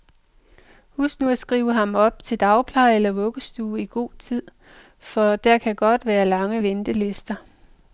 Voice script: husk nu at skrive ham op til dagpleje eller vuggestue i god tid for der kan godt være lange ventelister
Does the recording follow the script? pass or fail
pass